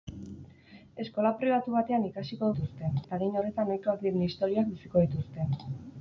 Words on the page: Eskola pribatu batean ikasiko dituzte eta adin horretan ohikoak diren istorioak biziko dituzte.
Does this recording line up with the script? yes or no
yes